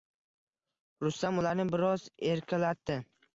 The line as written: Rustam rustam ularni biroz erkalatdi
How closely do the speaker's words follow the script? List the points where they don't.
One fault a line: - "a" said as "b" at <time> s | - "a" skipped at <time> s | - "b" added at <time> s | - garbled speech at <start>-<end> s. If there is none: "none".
- "rustam" skipped at 1.4 s